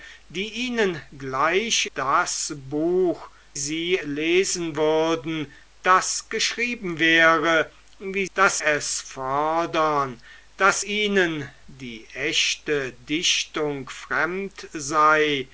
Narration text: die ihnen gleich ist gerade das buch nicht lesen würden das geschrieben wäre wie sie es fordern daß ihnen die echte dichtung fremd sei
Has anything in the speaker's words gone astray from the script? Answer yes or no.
yes